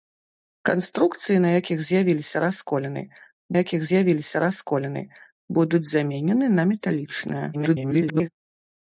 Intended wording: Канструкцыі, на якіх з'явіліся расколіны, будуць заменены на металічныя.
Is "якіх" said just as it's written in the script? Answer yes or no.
yes